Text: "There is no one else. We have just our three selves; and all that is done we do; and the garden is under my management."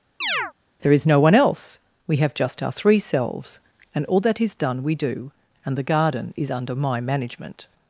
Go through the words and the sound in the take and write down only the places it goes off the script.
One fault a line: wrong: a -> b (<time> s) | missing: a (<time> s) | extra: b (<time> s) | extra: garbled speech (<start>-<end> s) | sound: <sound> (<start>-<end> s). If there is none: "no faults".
sound: chirp (0.2-0.5 s)